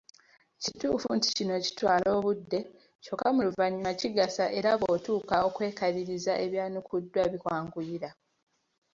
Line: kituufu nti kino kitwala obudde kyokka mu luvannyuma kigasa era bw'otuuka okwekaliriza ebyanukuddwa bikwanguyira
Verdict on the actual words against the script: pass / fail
pass